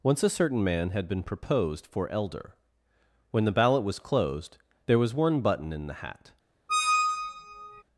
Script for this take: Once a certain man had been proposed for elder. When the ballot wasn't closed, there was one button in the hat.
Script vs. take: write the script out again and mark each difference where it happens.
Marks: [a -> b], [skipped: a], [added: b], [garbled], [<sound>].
Once a certain man had been proposed for elder. When the ballot [wasn't -> was] closed, there was one button in the hat. [squeak]